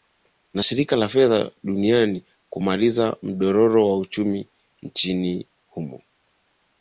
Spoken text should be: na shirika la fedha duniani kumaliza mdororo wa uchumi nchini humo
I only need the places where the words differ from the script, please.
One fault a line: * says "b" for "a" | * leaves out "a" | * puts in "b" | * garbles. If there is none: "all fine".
all fine